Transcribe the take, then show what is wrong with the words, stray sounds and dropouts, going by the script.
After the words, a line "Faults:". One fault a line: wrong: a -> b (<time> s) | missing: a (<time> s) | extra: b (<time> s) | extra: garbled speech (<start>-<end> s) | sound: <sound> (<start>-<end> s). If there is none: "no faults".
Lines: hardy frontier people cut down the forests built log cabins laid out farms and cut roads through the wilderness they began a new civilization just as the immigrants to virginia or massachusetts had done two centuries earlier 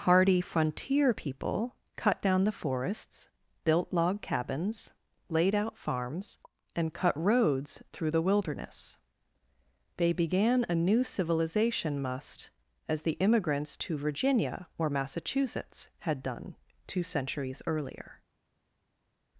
hardy frontier people cut down the forests built log cabins laid out farms and cut roads through the wilderness they began a new civilization must as the immigrants to virginia or massachusetts had done two centuries earlier
Faults:
wrong: just -> must (12.0 s)